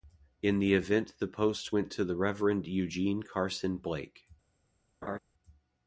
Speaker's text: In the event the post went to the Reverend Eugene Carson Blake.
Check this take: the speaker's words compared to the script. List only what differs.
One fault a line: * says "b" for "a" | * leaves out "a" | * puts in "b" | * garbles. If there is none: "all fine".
all fine